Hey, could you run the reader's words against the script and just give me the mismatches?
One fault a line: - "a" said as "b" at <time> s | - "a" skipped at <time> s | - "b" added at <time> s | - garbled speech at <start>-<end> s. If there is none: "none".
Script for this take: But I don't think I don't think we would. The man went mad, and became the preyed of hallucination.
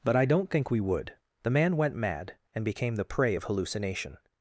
- "I don't think" skipped at 0.7 s
- "preyed" said as "prey" at 3.0 s